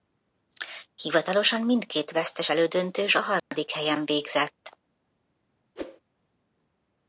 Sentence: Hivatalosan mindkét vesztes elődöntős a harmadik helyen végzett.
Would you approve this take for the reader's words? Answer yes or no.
yes